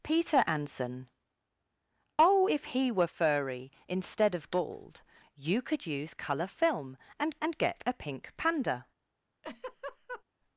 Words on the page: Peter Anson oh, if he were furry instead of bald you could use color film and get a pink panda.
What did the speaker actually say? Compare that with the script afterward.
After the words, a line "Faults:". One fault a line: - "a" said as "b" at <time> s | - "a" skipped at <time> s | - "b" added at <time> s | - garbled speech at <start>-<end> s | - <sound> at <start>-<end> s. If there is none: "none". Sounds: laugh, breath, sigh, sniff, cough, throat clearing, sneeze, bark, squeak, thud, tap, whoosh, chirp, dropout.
Peter Anson oh, if he were furry instead of bald you could use color film and and get a pink panda.
Faults:
- "and" added at 7.4 s
- laugh at 9.4-10.2 s